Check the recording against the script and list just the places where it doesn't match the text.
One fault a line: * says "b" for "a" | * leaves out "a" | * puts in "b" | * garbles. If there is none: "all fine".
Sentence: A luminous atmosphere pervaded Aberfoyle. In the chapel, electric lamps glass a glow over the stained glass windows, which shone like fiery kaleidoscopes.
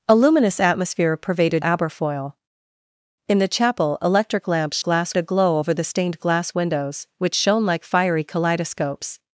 all fine